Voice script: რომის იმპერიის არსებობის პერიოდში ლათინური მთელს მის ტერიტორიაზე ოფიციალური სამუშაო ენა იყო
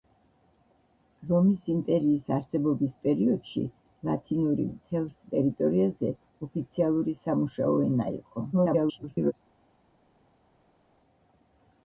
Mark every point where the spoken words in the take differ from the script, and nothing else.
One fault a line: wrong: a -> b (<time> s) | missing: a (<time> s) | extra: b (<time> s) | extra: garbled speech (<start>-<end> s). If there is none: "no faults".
missing: მის (5.2 s)
extra: garbled speech (8.5-9.3 s)